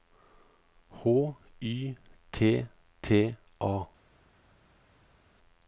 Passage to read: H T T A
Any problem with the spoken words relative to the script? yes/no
yes